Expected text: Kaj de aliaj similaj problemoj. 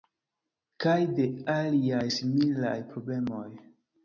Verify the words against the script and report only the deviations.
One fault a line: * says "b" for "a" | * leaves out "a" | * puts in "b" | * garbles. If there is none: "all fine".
all fine